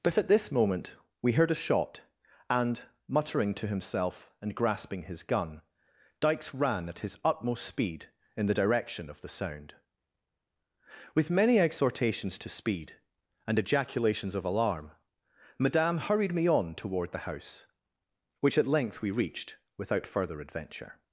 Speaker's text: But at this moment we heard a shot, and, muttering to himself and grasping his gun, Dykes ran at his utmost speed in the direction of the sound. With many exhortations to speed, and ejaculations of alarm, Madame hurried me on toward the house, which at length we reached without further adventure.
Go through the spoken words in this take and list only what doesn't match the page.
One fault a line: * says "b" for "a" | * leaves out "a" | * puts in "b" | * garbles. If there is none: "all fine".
all fine